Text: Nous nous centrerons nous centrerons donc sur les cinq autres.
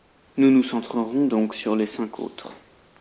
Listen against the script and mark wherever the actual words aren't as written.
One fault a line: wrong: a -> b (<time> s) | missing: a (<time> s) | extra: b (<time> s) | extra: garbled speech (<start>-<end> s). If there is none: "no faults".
missing: nous centrerons (1.3 s)